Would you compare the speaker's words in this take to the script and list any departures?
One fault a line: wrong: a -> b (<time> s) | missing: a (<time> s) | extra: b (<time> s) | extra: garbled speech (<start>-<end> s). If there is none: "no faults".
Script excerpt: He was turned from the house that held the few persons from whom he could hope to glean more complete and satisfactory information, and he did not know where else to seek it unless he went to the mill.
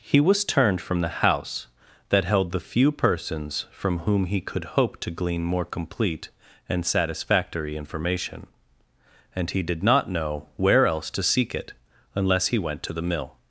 no faults